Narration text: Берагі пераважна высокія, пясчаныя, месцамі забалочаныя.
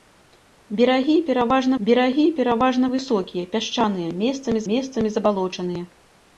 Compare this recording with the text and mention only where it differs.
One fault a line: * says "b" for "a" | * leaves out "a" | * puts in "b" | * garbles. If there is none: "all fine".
* puts in "берагі пераважна"
* puts in "месцамі"